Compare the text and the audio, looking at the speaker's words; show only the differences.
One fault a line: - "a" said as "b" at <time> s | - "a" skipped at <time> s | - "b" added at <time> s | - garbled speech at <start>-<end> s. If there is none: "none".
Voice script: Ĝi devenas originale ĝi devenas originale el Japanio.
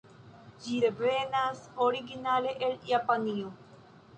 - "ĝi devenas originale" skipped at 2.6 s